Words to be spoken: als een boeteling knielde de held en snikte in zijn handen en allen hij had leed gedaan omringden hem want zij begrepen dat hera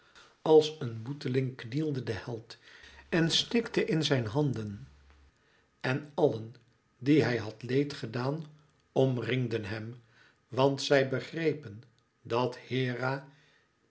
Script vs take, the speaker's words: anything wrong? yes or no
yes